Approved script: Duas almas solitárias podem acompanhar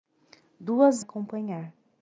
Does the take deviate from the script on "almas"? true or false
true